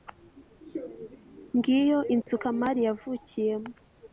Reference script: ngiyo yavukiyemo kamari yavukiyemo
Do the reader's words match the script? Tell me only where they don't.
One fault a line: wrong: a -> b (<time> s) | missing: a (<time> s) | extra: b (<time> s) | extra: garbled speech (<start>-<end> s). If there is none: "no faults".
wrong: yavukiyemo -> inzu (2.1 s)